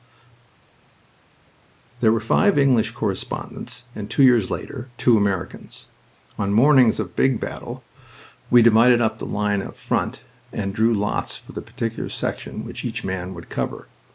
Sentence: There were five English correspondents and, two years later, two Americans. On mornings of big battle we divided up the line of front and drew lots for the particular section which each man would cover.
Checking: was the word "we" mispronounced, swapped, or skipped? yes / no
no